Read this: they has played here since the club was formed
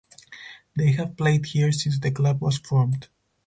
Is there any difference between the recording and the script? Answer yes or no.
yes